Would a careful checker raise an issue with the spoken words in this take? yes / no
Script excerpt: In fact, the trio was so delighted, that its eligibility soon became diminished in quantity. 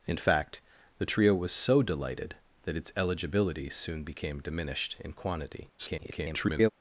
yes